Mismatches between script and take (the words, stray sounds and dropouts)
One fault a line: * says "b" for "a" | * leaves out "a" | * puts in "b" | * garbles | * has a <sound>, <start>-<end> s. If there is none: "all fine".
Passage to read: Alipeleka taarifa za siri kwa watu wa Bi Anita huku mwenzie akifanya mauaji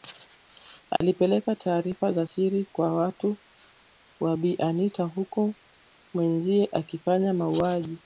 * has a dropout, 1.0-1.0 s